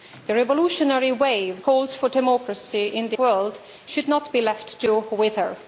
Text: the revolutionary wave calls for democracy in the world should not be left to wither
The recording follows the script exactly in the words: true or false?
true